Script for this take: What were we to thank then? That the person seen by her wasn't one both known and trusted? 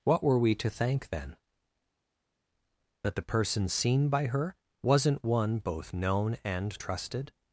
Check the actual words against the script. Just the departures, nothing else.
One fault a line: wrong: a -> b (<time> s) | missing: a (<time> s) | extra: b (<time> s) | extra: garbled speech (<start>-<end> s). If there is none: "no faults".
no faults